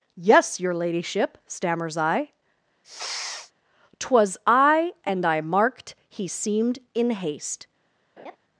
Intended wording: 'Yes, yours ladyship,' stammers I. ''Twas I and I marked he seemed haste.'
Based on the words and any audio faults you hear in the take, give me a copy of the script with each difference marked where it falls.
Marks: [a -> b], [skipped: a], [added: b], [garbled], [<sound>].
'Yes, [yours -> your] ladyship,' stammers I. [sniff] ''Twas I and I marked he seemed [added: in] haste.' [laugh]